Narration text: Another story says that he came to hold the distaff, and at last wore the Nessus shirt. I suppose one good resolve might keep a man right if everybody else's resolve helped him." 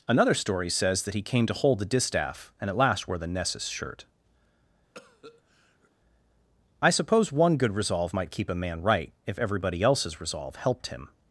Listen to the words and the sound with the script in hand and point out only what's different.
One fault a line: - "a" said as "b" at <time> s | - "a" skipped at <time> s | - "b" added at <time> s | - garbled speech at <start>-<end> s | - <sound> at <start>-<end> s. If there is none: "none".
- cough at 4.9-5.9 s